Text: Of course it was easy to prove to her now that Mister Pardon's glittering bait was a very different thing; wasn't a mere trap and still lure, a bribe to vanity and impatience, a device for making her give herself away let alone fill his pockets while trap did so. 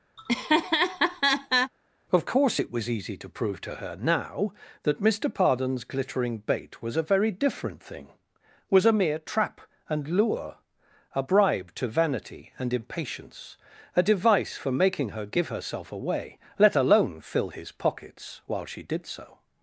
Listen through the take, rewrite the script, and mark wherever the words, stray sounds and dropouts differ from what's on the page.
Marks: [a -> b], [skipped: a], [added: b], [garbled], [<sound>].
[laugh] Of course it was easy to prove to her now that Mister Pardon's glittering bait was a very different thing; [wasn't -> was] a mere trap and [skipped: still] lure, a bribe to vanity and impatience, a device for making her give herself away let alone fill his pockets while [trap -> she] did so.